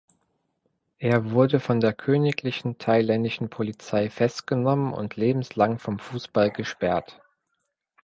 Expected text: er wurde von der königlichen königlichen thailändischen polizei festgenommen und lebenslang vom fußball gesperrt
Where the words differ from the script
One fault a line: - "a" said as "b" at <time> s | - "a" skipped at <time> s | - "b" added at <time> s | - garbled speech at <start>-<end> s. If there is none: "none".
- "königlichen" skipped at 2.8 s